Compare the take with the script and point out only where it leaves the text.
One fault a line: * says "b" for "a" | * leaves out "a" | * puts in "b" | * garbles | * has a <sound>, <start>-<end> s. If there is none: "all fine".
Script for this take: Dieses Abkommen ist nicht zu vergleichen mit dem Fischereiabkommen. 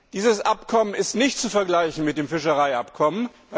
all fine